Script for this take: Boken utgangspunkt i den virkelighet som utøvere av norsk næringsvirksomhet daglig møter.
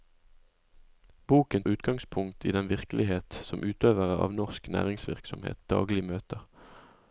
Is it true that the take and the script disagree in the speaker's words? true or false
false